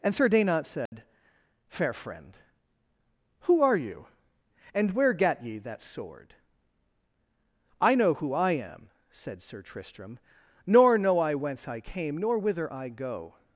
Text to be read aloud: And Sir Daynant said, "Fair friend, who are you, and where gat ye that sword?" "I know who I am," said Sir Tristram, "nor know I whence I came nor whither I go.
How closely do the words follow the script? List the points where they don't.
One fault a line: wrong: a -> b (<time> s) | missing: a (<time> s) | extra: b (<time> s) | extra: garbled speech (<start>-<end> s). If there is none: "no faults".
no faults